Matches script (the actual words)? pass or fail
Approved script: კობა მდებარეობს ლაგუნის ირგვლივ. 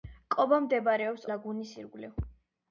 pass